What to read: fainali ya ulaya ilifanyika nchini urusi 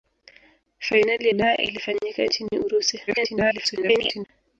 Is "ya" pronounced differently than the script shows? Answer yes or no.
yes